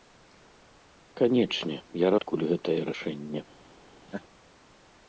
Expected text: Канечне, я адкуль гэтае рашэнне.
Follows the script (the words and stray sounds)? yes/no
no